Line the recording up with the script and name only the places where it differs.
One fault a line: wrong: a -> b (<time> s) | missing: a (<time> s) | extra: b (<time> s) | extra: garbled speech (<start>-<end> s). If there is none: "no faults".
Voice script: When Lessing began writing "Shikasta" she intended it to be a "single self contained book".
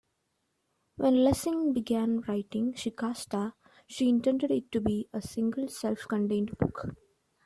no faults